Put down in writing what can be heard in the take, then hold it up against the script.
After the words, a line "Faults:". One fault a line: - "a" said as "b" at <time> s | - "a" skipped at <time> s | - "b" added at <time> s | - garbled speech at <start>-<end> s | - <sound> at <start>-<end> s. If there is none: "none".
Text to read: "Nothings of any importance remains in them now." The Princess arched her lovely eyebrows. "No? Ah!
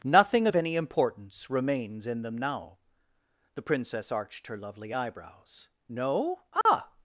"Nothing of any importance remains in them now." The Princess arched her lovely eyebrows. "No? Ah!
Faults:
- "Nothings" said as "Nothing" at 0.0 s
- dropout at 6.6-6.7 s